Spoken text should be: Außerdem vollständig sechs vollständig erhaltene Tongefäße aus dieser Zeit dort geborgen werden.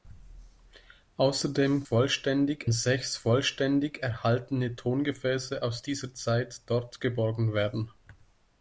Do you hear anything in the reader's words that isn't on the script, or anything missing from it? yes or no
no